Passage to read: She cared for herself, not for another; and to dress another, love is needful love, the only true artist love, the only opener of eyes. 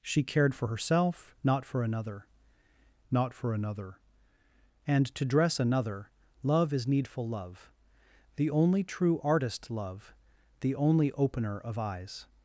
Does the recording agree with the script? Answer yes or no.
no